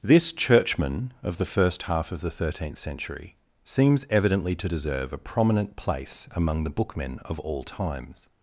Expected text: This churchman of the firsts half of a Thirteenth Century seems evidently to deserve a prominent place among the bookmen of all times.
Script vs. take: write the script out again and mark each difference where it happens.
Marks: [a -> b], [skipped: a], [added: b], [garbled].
This churchman of the [firsts -> first] half of [a -> the] Thirteenth Century seems evidently to deserve a prominent place among the bookmen of all times.